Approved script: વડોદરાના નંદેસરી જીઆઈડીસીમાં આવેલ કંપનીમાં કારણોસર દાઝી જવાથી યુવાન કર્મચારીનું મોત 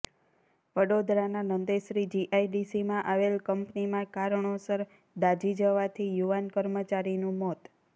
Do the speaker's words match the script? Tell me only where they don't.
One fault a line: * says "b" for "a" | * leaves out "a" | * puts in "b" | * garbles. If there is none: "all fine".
all fine